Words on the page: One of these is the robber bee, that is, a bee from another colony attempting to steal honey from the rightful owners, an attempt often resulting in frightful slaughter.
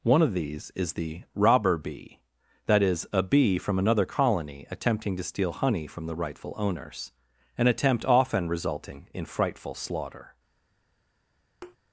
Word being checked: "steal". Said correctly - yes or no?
yes